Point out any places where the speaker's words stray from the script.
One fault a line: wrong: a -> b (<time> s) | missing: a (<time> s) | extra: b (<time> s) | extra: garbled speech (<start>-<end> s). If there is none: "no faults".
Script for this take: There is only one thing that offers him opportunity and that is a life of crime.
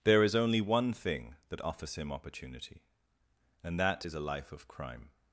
no faults